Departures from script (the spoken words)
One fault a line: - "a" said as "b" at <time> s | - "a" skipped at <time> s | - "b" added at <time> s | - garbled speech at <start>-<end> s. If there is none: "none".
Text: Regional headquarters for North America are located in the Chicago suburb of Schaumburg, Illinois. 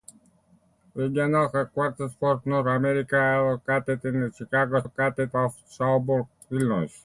- "suburb" said as "located" at 4.8 s